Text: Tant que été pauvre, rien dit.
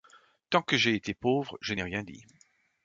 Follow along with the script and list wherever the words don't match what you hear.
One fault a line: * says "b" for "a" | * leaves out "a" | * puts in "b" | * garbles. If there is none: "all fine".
* puts in "j'ai"
* puts in "je n'ai"